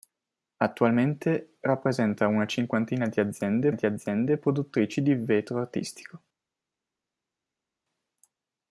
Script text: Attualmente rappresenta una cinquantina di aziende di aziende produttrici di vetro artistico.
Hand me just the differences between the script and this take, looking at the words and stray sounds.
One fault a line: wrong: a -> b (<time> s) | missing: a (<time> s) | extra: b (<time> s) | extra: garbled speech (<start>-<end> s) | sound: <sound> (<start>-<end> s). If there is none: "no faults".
no faults